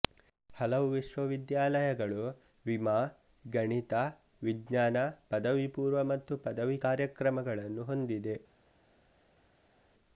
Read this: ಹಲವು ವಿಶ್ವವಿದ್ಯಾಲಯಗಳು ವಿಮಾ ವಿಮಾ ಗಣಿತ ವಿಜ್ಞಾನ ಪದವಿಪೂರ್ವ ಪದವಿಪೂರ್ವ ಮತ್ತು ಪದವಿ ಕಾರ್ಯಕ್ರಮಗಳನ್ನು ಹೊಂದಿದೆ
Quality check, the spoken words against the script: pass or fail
fail